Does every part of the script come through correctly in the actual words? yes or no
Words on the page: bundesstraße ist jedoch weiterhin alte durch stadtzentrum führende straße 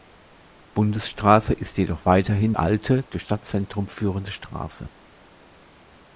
yes